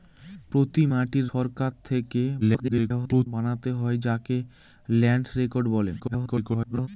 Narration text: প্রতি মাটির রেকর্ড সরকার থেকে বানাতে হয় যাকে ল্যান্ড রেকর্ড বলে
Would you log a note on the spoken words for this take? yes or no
yes